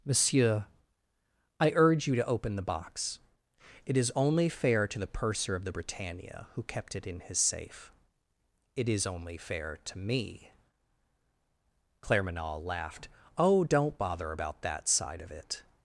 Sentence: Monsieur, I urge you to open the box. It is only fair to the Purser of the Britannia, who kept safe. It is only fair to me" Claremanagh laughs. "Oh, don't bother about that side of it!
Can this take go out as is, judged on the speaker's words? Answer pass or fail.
fail